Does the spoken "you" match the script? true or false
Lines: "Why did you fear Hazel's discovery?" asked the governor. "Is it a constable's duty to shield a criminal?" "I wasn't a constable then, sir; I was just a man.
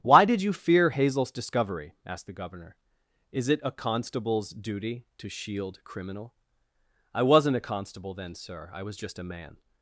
true